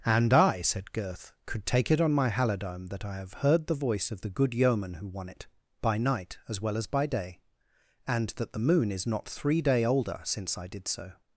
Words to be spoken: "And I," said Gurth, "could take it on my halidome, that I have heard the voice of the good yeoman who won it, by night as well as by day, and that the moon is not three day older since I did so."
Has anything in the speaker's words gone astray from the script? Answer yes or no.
no